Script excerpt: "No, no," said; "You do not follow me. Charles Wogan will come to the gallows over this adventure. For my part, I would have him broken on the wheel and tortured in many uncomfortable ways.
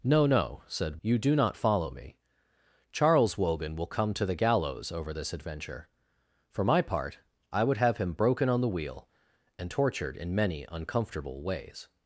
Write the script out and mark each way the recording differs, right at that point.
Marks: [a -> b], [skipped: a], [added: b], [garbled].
"No, no," said; "You do not follow me. Charles Wogan will come to the gallows over this adventure. For my part, I would have him broken on the wheel and tortured in many uncomfortable ways.